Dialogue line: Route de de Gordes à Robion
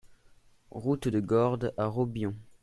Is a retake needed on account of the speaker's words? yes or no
yes